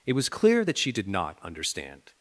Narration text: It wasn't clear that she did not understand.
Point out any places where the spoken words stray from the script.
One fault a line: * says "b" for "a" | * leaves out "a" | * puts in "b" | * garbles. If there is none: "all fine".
* says "was" for "wasn't"